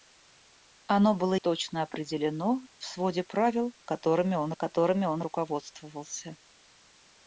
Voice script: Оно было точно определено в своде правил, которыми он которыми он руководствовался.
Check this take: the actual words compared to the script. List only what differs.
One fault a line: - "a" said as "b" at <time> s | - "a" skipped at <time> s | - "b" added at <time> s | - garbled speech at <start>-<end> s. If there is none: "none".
none